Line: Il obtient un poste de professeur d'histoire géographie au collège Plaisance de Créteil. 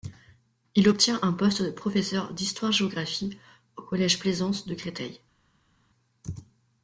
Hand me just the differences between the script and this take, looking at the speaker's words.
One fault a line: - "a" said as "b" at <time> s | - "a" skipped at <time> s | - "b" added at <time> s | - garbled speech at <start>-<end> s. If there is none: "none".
none